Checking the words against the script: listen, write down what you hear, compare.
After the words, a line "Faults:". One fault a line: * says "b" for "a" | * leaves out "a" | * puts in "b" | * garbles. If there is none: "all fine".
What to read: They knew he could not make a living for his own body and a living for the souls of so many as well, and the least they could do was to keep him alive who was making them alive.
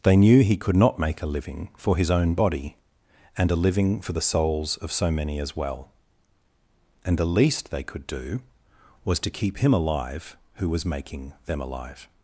They knew he could not make a living for his own body and a living for the souls of so many as well, and the least they could do was to keep him alive who was making them alive.
Faults:
all fine